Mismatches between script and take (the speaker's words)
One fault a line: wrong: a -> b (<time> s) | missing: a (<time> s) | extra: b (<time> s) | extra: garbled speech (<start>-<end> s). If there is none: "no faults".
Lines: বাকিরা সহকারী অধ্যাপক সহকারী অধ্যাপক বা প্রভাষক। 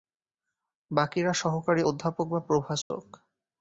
missing: সহকারী অধ্যাপক (2.3 s)